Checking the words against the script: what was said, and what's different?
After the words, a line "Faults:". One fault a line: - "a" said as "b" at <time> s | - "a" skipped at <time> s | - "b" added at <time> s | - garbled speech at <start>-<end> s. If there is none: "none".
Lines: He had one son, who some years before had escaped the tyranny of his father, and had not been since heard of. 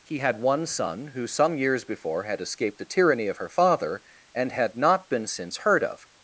He had one son, who some years before had escaped the tyranny of her father, and had not been since heard of.
Faults:
- "his" said as "her" at 3.4 s